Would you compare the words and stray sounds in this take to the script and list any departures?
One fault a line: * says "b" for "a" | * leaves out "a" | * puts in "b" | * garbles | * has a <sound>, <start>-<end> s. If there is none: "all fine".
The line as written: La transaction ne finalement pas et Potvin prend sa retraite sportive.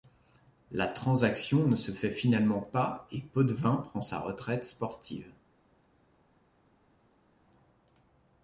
* puts in "se fait"